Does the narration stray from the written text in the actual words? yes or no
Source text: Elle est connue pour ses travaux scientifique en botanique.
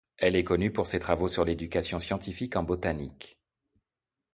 yes